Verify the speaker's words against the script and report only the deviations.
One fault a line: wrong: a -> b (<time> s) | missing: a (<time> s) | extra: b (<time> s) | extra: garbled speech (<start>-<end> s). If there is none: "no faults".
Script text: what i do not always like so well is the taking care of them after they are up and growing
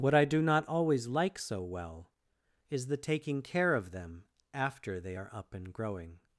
no faults